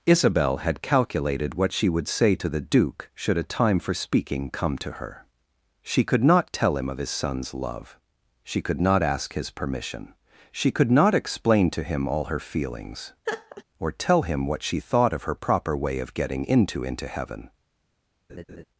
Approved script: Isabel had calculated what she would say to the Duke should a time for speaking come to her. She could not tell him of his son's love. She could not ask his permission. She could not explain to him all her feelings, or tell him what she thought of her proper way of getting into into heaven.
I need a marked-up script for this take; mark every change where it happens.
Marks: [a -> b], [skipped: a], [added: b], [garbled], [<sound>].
Isabel had calculated what she would say to the Duke should a time for speaking come to her. She could not tell him of his son's love. She could not ask his permission. She could not explain to him all her feelings, [laugh] or tell him what she thought of her proper way of getting into into heaven. [laugh]